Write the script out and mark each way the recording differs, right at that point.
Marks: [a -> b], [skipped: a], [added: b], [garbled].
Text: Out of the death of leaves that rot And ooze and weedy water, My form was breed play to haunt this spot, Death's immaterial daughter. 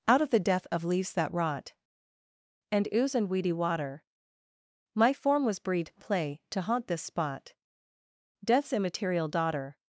Out of the death of leaves that rot And ooze and weedy water, My form was breed play to haunt this spot, Death's immaterial daughter.